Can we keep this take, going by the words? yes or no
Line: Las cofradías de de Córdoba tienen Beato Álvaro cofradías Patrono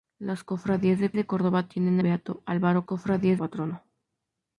yes